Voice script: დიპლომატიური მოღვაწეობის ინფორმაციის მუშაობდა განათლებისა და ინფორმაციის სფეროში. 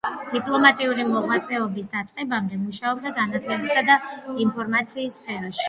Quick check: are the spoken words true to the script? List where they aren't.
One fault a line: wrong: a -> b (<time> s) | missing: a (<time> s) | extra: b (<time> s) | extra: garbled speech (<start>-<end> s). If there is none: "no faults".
wrong: ინფორმაციის -> დაწყებამდე (2.0 s)